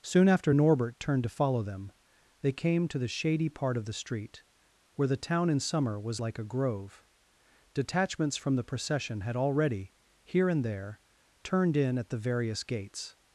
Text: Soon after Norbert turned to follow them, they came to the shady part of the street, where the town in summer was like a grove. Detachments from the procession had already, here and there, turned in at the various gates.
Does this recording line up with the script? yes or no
yes